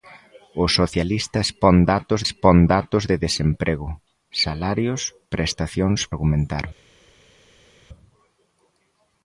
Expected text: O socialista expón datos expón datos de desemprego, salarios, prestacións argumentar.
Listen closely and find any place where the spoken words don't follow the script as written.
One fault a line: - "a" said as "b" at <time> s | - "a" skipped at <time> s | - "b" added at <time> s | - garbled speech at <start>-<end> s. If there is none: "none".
none